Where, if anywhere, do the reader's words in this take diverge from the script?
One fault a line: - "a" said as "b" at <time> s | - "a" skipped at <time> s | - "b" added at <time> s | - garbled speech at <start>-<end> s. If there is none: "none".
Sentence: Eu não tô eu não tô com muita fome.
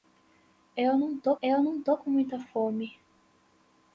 none